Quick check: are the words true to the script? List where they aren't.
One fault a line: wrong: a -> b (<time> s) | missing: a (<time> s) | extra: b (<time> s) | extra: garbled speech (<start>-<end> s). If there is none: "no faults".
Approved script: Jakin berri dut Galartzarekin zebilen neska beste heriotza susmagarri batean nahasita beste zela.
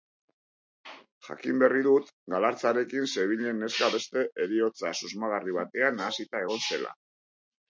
wrong: beste -> egon (6.5 s)